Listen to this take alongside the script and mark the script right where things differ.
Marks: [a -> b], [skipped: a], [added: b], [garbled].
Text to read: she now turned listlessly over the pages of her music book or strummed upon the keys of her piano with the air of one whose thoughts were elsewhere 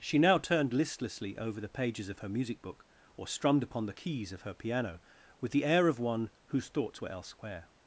she now turned listlessly over the pages of her music book or strummed upon the keys of her piano with the air of one whose thoughts were elsewhere